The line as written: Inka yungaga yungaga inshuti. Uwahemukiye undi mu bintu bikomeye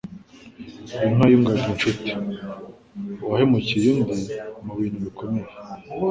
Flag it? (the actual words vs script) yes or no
yes